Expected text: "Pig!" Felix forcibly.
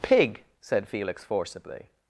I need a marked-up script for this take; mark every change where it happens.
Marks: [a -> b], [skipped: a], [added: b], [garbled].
"Pig!" [added: said] Felix forcibly.